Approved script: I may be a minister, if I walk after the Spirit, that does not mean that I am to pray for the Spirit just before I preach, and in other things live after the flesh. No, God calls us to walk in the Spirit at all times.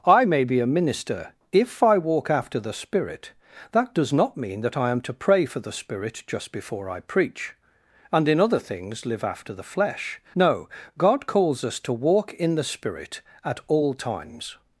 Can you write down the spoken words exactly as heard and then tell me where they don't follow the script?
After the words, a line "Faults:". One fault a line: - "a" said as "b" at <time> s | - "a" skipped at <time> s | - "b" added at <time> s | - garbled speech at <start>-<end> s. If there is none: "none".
I may be a minister, if I walk after the Spirit, that does not mean that I am to pray for the Spirit just before I preach, and in other things live after the flesh. No, God calls us to walk in the Spirit at all times.
Faults:
none